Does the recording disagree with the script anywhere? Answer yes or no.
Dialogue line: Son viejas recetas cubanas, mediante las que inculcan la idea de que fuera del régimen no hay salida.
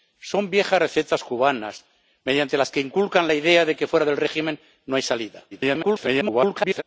yes